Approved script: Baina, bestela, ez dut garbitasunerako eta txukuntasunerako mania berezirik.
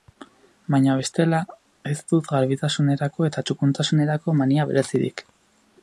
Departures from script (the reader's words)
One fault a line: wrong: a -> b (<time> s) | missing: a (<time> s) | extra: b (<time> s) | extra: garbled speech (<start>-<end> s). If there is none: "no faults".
no faults